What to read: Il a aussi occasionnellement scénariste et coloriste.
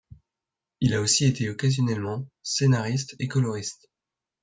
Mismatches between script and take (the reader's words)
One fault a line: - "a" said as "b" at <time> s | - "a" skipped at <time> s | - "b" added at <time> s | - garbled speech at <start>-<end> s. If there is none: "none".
- "été" added at 1.2 s